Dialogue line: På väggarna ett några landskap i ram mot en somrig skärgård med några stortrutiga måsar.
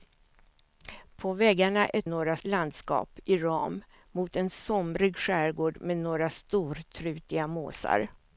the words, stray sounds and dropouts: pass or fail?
pass